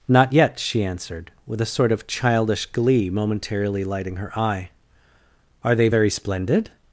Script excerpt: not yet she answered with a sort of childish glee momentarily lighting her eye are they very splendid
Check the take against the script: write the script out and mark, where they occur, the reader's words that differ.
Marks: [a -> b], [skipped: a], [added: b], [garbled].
not yet she answered with a sort of childish glee momentarily lighting her eye are they very splendid